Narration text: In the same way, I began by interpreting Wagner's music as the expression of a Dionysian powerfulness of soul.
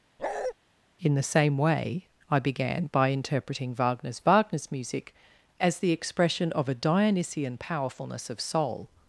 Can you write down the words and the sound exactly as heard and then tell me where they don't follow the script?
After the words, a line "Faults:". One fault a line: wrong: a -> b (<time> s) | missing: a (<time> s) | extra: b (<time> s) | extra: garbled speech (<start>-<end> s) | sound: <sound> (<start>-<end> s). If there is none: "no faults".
In the same way, I began by interpreting Wagner's Wagner's music as the expression of a Dionysian powerfulness of soul.
Faults:
sound: bark (0.2-0.5 s)
extra: Wagner's (4.2 s)